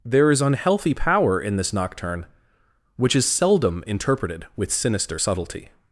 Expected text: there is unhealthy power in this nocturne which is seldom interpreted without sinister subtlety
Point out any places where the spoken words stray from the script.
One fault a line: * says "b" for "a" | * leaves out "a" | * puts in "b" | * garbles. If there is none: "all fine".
* says "with" for "without"